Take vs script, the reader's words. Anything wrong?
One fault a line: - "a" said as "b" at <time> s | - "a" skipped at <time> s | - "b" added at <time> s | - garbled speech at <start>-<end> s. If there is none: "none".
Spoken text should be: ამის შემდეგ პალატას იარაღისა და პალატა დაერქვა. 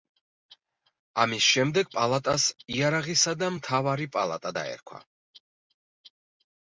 - "მთავარი" added at 3.6 s